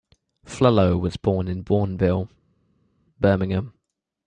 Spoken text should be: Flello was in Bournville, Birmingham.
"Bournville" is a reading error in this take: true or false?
false